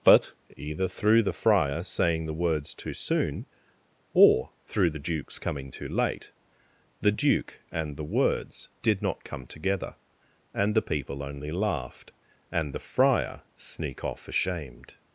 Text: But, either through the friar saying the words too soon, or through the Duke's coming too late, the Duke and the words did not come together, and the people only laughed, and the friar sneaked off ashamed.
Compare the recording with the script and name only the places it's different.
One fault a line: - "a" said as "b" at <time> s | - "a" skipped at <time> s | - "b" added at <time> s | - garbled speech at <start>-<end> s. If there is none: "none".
- "sneaked" said as "sneak" at 13.5 s